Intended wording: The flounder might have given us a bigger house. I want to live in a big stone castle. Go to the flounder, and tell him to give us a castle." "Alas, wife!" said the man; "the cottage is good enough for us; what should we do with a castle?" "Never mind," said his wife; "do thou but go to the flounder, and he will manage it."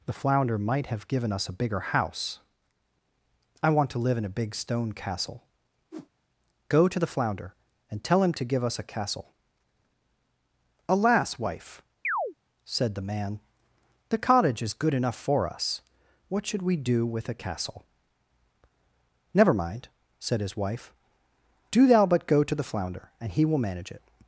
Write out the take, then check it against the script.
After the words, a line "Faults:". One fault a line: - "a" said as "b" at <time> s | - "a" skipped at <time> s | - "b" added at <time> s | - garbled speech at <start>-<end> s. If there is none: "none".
The flounder might have given us a bigger house. I want to live in a big stone castle. Go to the flounder, and tell him to give us a castle." "Alas, wife!" said the man; "the cottage is good enough for us; what should we do with a castle?" "Never mind," said his wife; "do thou but go to the flounder, and he will manage it."
Faults:
none